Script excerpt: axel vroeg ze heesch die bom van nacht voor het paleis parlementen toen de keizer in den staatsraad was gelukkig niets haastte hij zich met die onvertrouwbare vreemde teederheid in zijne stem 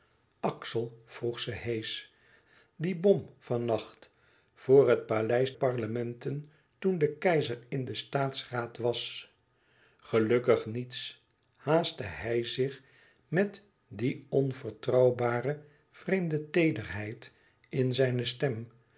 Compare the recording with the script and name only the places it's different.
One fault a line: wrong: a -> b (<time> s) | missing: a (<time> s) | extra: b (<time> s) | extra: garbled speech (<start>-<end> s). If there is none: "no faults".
no faults